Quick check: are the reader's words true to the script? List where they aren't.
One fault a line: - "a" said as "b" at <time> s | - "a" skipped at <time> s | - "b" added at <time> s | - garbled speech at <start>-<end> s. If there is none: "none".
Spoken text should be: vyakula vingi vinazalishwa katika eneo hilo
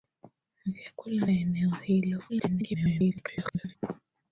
- "vingi vinazalishwa katika" skipped at 1.2 s
- garbled speech at 2.3-3.8 s